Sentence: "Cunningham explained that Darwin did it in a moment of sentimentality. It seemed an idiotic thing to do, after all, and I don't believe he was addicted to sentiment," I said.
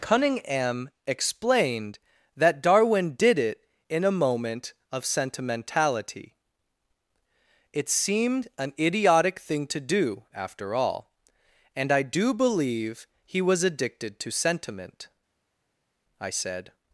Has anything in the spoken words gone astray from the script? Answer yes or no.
yes